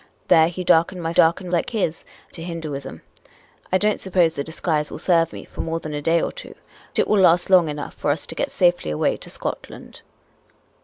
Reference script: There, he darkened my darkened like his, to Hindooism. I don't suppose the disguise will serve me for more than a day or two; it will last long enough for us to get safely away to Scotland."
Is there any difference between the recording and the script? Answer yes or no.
no